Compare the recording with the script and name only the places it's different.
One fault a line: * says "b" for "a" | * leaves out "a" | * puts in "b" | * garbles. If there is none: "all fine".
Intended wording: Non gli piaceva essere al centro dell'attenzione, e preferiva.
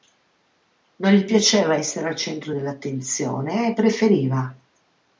all fine